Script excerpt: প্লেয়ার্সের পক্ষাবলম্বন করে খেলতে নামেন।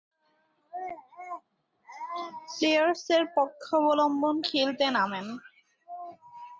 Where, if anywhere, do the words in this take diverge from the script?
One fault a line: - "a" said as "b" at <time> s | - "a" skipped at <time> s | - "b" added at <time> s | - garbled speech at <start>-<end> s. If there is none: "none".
- "করে" skipped at 4.3 s